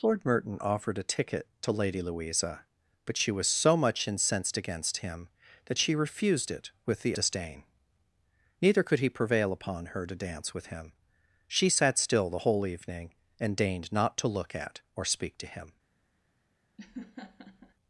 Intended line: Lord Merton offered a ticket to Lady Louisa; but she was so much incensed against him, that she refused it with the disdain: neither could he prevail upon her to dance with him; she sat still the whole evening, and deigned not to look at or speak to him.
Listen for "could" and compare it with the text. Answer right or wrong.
right